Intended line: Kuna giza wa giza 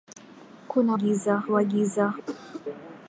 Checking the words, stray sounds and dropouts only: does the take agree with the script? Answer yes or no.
no